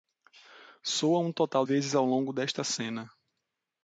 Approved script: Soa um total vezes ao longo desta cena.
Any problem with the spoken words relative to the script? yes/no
no